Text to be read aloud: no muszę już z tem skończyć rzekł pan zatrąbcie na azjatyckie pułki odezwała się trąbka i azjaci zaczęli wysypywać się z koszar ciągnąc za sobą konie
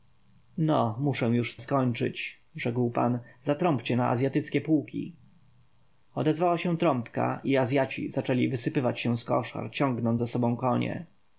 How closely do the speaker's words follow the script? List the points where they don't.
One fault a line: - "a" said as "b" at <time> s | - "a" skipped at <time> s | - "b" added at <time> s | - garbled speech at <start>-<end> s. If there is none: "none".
- "tem" skipped at 1.6 s